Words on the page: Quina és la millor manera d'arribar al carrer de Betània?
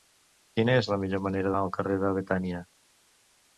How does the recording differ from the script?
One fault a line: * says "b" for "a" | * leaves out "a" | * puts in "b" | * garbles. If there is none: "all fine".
* leaves out "d'arribar"